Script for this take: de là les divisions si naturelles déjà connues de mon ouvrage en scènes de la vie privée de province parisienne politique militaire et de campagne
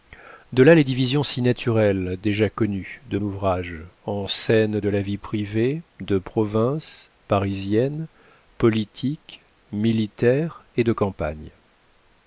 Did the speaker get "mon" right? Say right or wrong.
wrong